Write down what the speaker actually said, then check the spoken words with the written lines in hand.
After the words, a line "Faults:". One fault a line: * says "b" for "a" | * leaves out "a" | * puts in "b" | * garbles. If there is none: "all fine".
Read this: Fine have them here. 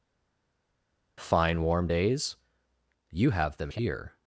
Fine warm days? You have them here.
Faults:
* puts in "warm days You"